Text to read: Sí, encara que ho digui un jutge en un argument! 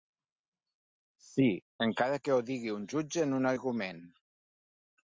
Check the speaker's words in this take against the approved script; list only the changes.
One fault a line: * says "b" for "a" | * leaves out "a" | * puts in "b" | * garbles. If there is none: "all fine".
all fine